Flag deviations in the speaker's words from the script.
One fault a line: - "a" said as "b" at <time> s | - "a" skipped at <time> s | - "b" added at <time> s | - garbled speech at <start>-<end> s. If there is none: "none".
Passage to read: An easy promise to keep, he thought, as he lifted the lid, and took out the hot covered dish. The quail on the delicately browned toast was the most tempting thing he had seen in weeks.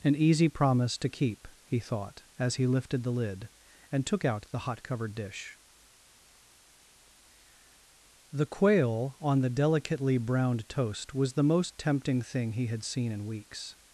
none